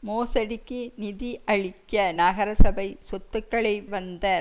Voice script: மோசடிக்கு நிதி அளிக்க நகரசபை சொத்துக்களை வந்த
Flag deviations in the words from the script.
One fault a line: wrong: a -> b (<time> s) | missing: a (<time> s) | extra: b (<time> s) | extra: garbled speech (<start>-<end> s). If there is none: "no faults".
no faults